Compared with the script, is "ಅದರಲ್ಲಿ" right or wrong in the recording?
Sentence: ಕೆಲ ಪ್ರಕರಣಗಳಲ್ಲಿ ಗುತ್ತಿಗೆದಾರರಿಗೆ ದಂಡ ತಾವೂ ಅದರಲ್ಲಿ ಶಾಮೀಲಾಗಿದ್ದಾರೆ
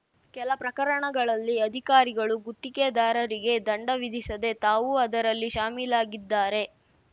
right